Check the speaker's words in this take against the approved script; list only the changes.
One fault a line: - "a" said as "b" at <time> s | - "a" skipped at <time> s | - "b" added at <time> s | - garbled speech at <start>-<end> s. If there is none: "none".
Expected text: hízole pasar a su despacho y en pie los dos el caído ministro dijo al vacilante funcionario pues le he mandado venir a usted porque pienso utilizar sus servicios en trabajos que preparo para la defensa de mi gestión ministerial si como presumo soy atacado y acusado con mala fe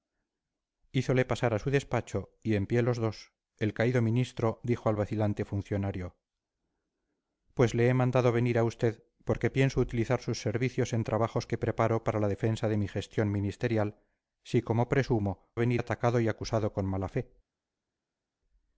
- "soy" said as "venir" at 15.6 s